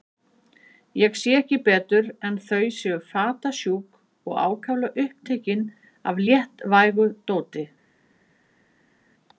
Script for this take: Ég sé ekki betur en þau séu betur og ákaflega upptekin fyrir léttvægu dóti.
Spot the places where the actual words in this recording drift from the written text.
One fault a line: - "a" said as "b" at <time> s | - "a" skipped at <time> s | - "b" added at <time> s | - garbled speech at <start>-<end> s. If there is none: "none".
- "betur" said as "fatasjúk" at 3.1 s
- "fyrir" said as "af" at 6.1 s